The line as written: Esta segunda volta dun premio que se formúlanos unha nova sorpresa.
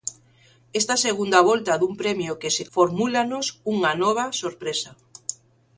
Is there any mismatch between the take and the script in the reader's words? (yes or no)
no